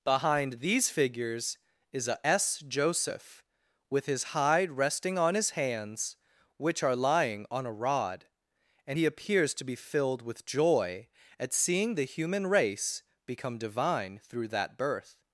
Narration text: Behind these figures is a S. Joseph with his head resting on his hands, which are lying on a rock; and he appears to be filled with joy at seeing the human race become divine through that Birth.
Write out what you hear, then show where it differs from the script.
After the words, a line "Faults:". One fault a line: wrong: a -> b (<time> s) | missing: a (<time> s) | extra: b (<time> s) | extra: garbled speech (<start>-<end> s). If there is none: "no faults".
Behind these figures is a S. Joseph with his hide resting on his hands, which are lying on a rod; and he appears to be filled with joy at seeing the human race become divine through that Birth.
Faults:
wrong: head -> hide (4.3 s)
wrong: rock -> rod (7.7 s)